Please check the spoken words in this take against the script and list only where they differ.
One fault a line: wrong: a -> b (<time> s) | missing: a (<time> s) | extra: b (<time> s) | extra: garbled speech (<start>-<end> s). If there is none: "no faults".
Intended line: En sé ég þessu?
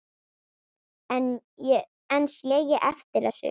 extra: eftir (2.9 s)